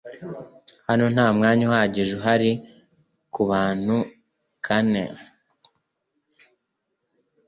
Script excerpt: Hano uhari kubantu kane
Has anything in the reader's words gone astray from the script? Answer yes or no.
yes